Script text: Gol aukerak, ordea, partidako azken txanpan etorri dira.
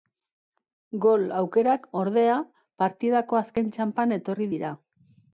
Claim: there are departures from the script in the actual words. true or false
false